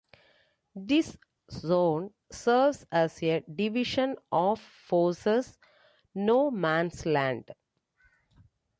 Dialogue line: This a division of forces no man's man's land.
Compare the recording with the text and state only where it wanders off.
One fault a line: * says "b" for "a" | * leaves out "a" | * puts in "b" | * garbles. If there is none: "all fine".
* puts in "zone serves as"
* leaves out "man's"